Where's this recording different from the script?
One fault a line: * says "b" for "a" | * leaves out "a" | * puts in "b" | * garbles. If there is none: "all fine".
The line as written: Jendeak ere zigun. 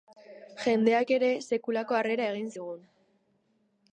* puts in "sekulako harrera egin"